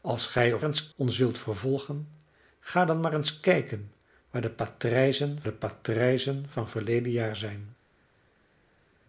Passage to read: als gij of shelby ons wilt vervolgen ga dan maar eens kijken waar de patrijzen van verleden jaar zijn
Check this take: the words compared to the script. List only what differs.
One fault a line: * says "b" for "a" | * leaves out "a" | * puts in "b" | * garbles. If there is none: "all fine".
* says "eens" for "shelby"
* puts in "de patrijzen"